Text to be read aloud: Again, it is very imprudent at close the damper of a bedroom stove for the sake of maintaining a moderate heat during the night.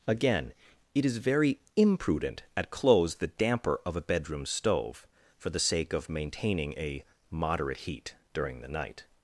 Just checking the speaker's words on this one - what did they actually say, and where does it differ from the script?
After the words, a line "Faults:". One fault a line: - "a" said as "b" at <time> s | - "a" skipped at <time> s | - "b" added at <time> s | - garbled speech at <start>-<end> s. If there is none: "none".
Again, it is very imprudent at close the damper of a bedroom stove for the sake of maintaining a moderate heat during the night.
Faults:
none